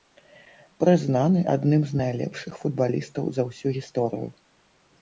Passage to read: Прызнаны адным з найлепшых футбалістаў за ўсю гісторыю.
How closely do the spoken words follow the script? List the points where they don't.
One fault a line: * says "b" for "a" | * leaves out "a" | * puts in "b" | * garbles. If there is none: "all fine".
all fine